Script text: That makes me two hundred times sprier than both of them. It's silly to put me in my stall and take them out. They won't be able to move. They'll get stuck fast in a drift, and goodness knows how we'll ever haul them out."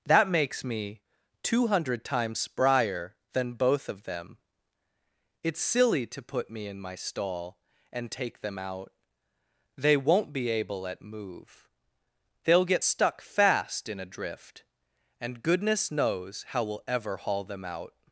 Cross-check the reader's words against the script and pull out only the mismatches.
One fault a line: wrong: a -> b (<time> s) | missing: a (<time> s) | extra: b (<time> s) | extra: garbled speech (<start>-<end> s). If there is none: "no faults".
wrong: to -> at (10.9 s)